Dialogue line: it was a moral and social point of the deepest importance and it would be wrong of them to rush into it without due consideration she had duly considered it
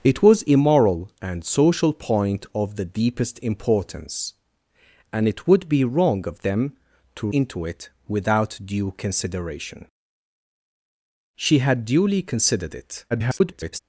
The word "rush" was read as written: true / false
false